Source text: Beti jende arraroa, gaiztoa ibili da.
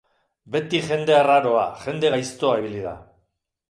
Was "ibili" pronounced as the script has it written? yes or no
yes